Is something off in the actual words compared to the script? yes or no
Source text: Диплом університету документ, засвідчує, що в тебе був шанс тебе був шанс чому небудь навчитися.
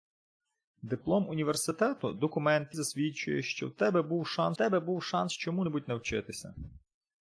no